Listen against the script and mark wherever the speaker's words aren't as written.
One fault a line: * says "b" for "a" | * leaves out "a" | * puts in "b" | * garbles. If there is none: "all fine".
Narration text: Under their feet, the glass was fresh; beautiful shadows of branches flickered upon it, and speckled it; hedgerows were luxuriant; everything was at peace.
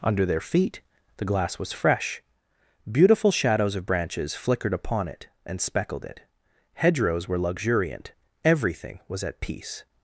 all fine